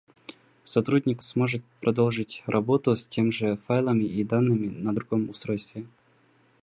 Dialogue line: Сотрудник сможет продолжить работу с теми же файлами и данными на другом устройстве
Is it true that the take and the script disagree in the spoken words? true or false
false